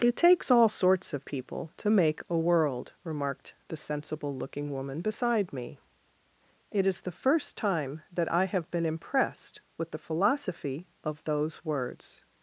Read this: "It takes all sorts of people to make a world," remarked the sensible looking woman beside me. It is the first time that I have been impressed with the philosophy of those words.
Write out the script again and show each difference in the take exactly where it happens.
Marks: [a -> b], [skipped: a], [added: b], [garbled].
"It takes all sorts of people to make a world," remarked the sensible looking woman beside me. It is the first time that I have been impressed with the philosophy of those words.